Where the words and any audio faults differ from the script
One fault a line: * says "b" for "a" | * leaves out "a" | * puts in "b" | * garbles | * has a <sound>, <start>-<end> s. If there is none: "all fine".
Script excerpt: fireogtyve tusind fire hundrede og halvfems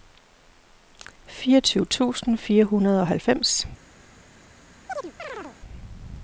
* has a chirp, 4.9-5.6 s